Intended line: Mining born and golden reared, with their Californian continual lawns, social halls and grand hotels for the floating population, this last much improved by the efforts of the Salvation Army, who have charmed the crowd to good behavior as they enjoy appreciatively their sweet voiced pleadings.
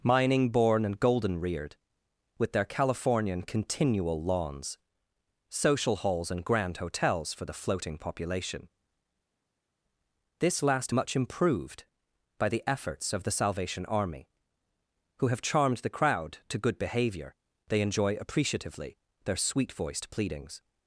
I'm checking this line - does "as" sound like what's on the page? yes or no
no